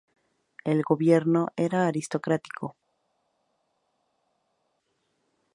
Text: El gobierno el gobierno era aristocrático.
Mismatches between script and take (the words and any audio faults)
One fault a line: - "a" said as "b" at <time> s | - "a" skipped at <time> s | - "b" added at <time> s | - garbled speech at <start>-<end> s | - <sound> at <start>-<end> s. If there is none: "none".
- "el gobierno" skipped at 1.5 s